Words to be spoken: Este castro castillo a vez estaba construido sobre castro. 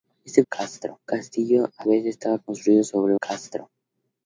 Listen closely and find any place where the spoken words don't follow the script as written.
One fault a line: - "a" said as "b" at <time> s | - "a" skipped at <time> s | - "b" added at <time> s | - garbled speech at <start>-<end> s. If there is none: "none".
none